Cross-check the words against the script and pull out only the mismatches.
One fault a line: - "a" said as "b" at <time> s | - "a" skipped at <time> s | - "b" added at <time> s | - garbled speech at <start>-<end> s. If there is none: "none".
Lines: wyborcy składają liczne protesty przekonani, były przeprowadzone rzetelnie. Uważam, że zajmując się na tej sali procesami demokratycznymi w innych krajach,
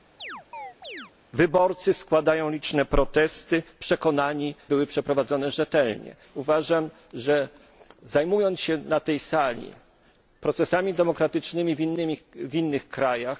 none